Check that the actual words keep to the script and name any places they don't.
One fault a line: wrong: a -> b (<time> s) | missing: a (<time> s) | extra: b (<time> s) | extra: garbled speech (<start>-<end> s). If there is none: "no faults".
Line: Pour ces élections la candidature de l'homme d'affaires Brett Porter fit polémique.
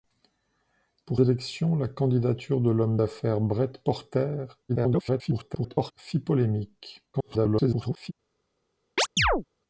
missing: ces (1.2 s)
extra: garbled speech (4.7-5.9 s)
extra: garbled speech (7.1-8.1 s)